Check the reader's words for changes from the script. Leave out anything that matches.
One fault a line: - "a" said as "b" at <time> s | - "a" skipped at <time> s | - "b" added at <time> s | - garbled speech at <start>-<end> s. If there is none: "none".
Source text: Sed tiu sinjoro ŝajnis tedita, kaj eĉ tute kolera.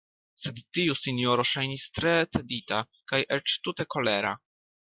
- "tre" added at 2.0 s